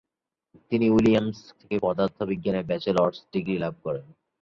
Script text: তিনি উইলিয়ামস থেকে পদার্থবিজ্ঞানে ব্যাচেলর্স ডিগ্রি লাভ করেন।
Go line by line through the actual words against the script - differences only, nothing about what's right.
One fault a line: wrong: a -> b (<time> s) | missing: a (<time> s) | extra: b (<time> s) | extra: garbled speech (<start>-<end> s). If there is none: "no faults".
no faults